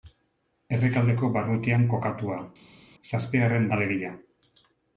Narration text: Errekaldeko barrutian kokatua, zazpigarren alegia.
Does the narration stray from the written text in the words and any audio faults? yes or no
no